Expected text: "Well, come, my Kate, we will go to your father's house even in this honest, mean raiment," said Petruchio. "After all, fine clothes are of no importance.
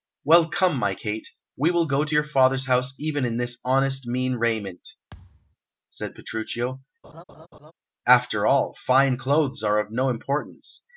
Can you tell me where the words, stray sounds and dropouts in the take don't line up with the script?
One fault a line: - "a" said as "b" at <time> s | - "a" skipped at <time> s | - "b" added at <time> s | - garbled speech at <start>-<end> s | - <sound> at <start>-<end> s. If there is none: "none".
- thud at 5.1-5.6 s
- laugh at 7.0-7.7 s